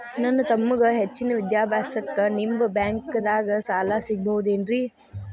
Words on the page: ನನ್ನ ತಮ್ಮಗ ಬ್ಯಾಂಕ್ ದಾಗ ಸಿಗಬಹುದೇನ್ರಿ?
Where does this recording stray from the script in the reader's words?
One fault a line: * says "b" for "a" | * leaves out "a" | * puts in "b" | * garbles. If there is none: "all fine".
* puts in "ಹೆಚ್ಚಿನ ವಿದ್ಯಾಭ್ಯಾಸಕ್ಕ ನಿಮ್ಮ"
* puts in "ಸಾಲ"